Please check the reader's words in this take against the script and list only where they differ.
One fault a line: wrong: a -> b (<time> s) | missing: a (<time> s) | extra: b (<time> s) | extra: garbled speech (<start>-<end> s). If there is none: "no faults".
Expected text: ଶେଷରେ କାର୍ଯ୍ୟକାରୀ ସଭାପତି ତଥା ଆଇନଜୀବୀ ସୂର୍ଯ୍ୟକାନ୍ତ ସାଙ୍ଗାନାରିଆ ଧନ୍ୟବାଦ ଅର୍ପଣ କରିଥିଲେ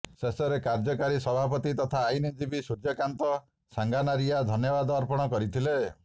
no faults